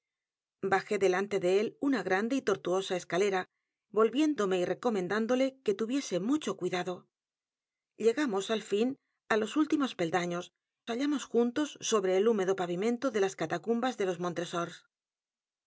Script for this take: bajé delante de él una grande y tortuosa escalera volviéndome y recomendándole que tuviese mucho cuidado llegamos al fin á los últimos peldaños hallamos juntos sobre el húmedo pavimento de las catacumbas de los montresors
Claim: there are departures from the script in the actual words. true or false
false